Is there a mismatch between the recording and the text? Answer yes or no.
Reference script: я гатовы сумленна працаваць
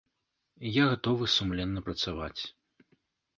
no